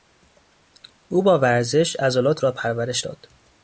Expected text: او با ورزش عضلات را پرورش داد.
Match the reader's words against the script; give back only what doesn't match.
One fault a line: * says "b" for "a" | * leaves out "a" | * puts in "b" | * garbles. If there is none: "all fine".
all fine